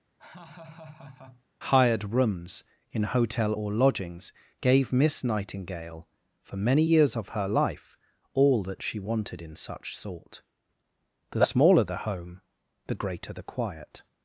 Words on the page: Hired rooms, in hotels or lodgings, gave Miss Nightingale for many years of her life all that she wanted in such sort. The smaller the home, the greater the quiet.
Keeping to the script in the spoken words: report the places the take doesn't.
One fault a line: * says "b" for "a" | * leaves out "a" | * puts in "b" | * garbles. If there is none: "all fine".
* says "hotel" for "hotels"